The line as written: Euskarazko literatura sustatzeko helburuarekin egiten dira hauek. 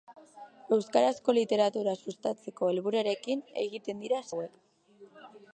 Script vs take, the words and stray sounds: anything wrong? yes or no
no